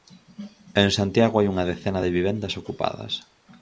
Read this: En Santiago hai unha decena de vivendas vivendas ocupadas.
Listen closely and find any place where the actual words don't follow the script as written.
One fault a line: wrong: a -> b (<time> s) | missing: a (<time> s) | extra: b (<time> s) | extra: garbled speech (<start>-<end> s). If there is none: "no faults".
missing: vivendas (2.5 s)